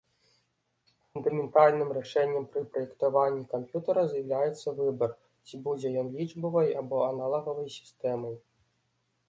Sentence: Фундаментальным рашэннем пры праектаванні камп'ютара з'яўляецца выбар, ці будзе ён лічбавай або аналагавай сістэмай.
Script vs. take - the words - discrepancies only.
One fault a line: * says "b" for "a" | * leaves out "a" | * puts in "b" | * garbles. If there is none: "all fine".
all fine